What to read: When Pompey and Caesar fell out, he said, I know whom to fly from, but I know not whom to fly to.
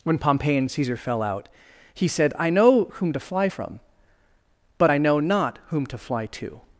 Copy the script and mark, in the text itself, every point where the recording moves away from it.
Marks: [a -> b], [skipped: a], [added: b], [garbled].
When Pompey and Caesar fell out, he said, I know whom to fly from, but I know not whom to fly to.